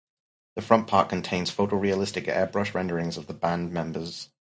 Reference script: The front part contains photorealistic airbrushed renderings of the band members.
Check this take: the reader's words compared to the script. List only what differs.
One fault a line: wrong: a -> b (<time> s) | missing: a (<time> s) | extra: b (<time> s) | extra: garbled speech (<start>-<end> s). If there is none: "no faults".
no faults